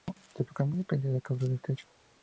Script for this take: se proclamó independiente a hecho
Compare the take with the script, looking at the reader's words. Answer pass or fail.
fail